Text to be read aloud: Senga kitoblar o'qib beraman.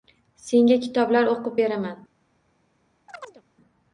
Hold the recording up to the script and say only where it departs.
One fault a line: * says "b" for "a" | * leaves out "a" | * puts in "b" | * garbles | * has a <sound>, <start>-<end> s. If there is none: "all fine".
* has a chirp, 3.1-3.4 s